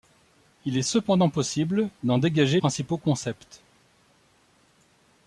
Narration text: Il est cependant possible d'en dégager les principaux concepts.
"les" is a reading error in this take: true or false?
true